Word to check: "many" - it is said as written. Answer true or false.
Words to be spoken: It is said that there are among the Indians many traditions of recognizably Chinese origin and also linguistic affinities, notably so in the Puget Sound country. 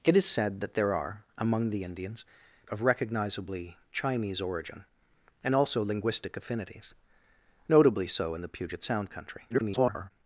false